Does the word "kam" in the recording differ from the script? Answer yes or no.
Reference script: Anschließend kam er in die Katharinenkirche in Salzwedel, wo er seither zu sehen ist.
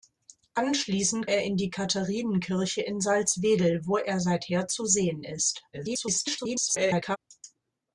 yes